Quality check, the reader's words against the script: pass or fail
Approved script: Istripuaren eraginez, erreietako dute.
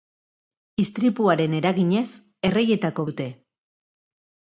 pass